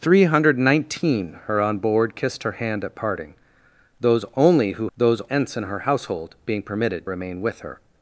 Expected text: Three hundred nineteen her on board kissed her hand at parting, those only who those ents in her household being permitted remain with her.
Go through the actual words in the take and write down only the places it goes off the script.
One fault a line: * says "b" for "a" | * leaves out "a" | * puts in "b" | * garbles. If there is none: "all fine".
all fine